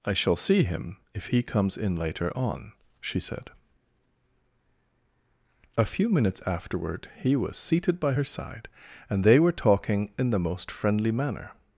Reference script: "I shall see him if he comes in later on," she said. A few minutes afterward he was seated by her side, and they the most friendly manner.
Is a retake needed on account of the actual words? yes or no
yes